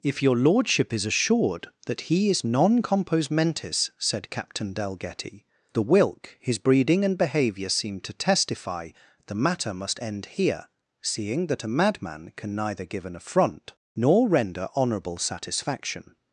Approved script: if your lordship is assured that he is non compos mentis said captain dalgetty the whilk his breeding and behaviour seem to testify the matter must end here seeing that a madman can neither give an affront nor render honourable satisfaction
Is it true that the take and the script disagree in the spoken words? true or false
false